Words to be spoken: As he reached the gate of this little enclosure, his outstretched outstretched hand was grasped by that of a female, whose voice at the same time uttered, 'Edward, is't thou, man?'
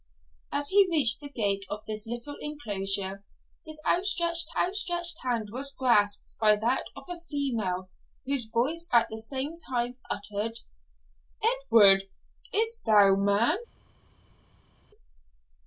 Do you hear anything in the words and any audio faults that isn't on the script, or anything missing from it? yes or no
no